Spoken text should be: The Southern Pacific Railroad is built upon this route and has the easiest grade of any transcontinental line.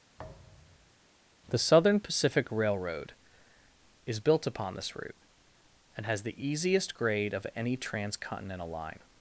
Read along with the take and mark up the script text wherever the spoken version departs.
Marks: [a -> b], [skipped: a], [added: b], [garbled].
The Southern Pacific Railroad is built upon this route and has the easiest grade of any transcontinental line.